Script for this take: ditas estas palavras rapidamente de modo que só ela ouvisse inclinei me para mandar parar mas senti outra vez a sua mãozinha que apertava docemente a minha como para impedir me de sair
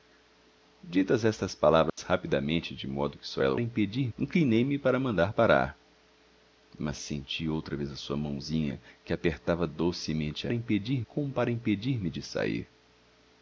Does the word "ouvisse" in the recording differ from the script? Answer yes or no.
yes